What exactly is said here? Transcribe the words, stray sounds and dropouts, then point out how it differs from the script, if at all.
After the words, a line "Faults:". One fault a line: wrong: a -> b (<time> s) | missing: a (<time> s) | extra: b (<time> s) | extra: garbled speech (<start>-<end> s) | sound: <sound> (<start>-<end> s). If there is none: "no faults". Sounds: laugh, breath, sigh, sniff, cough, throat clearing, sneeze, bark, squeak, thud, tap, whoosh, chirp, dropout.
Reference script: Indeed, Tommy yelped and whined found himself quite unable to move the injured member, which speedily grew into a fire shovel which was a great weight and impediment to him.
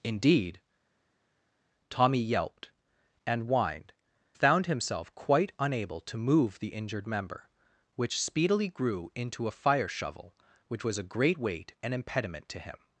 Indeed, Tommy yelped and whined found himself quite unable to move the injured member, which speedily grew into a fire shovel which was a great weight and impediment to him.
Faults:
no faults